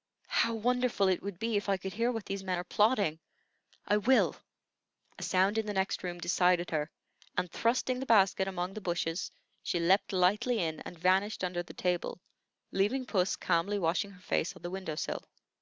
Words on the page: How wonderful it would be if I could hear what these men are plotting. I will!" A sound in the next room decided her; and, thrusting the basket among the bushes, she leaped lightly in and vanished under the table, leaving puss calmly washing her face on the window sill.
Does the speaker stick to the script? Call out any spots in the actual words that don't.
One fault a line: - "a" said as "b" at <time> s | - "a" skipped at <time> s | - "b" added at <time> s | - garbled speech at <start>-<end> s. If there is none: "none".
none